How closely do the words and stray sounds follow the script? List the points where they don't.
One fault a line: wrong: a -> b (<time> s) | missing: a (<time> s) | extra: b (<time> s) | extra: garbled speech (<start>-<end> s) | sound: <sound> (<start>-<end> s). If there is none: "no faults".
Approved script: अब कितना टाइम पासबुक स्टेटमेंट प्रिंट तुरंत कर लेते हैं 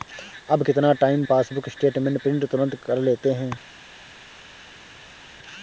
no faults